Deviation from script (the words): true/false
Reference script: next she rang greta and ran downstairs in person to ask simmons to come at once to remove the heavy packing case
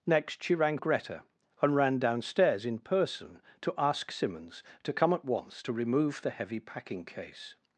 false